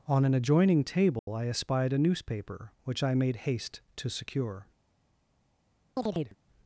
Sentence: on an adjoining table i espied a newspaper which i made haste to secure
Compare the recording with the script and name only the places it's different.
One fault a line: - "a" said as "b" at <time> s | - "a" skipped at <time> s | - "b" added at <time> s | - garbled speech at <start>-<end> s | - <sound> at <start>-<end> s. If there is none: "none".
- dropout at 1.2-1.3 s
- chirp at 6.0-6.4 s